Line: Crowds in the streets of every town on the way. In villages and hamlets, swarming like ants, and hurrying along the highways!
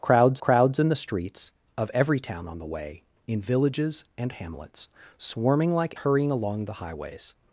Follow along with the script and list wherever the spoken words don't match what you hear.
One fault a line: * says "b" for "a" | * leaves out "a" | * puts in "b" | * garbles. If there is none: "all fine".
* puts in "crowds"
* leaves out "ants and"